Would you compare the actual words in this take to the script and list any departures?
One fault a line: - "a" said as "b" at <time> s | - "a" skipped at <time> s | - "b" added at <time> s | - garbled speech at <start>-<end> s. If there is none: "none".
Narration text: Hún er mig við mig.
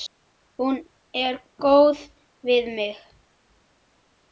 - "mig" said as "góð" at 1.7 s